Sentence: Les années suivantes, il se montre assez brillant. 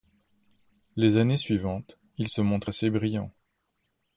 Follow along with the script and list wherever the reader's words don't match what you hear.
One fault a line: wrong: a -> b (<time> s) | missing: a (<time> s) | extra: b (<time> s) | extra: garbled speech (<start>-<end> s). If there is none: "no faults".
no faults